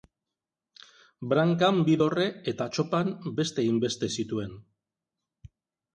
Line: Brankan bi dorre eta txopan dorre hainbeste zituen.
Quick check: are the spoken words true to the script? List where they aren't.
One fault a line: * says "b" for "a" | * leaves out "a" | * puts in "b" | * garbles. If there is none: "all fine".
* says "beste" for "dorre"